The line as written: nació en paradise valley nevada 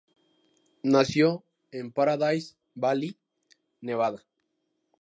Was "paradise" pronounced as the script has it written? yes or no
yes